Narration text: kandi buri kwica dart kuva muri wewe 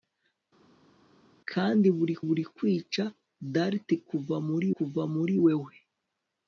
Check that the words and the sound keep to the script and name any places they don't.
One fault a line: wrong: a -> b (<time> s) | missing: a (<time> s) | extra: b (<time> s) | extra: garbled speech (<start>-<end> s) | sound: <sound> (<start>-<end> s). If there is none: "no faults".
extra: buri (2.2 s)
extra: kuva muri (4.8 s)